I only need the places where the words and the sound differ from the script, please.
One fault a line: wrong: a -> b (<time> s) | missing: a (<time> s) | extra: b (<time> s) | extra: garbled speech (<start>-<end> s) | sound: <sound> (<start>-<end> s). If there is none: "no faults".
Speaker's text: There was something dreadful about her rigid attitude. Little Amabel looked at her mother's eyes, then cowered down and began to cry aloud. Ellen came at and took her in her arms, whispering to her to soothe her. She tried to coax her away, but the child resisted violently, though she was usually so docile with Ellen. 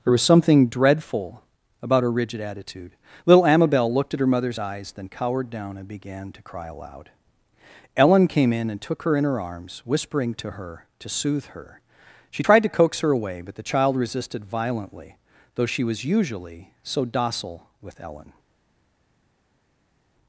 wrong: at -> in (8.5 s)